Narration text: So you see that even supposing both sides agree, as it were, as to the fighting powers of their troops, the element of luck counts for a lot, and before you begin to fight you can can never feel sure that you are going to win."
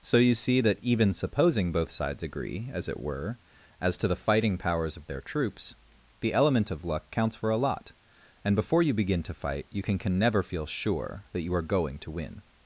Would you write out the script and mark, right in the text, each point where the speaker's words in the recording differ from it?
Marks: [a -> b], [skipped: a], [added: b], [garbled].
So you see that even supposing both sides agree, as it were, as to the fighting powers of their troops, the element of luck counts for a lot, and before you begin to fight you can can never feel sure that you are going to win."